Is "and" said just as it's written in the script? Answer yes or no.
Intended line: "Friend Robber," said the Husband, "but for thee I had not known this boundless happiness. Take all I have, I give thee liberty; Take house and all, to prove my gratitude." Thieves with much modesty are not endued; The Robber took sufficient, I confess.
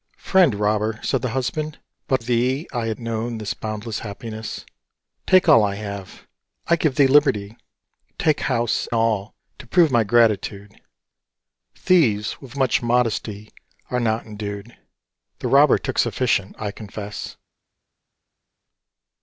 no